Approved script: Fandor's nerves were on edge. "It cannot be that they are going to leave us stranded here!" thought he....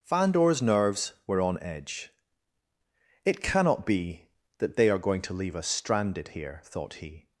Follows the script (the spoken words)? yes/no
yes